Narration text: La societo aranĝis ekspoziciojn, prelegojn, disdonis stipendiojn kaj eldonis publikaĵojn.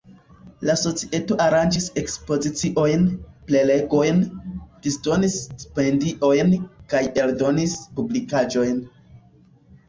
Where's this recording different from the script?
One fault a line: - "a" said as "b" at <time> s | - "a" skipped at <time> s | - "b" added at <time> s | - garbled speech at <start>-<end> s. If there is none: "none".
none